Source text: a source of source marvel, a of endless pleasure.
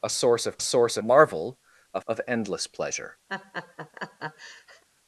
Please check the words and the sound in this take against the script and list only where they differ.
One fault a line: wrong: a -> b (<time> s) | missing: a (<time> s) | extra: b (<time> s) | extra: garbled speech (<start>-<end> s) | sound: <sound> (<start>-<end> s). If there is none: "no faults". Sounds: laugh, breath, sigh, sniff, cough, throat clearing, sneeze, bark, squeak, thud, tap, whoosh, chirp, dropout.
sound: laugh (3.3-4.8 s)